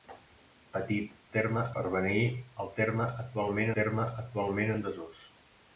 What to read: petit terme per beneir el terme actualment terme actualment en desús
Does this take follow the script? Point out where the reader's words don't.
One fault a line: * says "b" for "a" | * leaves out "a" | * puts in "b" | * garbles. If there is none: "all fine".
all fine